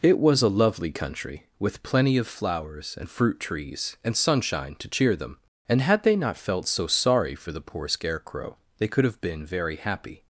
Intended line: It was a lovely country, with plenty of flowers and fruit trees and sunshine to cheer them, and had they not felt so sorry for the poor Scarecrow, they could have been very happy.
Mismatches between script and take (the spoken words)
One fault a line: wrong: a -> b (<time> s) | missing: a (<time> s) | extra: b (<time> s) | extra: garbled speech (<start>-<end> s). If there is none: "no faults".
no faults